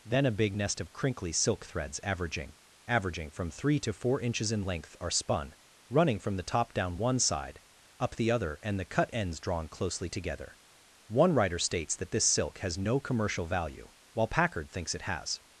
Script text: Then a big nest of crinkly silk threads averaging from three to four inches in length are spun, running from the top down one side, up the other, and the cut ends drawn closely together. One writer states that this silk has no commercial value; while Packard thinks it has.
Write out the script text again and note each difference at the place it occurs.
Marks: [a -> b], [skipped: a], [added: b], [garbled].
Then a big nest of crinkly silk threads averaging [added: averaging] from three to four inches in length are spun, running from the top down one side, up the other, and the cut ends drawn closely together. One writer states that this silk has no commercial value; while Packard thinks it has.